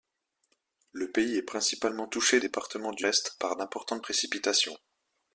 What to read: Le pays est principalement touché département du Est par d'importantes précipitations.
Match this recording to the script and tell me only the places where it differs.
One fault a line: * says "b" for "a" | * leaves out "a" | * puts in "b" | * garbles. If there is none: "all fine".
all fine